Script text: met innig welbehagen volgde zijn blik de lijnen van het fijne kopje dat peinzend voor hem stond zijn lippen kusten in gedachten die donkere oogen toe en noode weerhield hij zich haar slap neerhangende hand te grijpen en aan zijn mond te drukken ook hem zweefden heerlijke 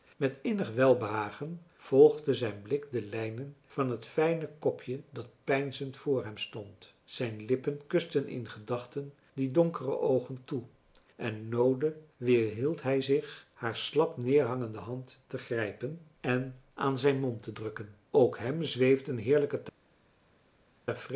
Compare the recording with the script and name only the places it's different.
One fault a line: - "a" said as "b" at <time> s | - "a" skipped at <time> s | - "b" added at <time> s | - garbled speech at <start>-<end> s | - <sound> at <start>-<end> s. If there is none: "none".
none